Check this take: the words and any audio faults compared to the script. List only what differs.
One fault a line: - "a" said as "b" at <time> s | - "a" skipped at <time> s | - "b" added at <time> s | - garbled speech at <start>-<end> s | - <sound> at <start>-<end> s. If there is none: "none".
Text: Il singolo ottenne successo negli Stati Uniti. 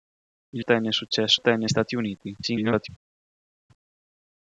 - "singolo" skipped at 0.7 s
- "negli" said as "ottenne" at 1.3 s
- garbled speech at 2.4-2.9 s